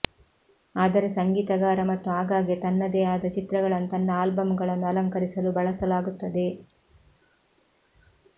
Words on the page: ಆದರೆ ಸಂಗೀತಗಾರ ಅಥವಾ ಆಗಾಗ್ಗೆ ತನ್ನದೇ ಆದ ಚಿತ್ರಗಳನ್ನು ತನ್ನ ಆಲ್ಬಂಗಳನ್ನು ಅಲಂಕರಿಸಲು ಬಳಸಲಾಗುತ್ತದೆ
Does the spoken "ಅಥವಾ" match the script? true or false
false